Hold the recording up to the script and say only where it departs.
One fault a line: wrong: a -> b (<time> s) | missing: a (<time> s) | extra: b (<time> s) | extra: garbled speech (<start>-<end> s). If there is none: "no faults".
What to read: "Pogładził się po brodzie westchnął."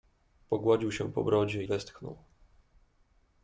no faults